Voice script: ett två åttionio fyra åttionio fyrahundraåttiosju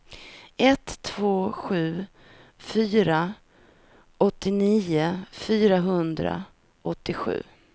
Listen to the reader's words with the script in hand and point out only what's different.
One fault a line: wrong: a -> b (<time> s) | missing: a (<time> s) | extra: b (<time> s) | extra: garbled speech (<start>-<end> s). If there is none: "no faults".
wrong: åttionio -> sju (1.5 s)